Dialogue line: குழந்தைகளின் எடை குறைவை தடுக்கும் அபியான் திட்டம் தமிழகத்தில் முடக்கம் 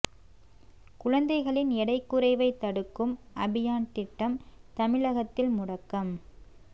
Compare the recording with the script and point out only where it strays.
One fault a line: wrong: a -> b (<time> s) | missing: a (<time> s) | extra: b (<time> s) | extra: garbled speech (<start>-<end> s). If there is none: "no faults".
no faults